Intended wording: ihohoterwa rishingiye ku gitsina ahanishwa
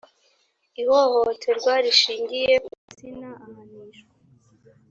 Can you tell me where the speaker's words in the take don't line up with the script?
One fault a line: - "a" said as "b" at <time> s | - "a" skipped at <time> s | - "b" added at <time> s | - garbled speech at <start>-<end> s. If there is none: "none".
none